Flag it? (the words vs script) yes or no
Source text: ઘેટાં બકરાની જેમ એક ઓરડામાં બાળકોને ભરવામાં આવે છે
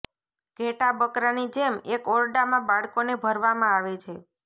no